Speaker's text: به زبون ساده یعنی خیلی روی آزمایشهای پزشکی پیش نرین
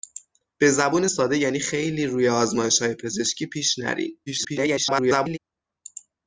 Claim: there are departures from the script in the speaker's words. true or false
true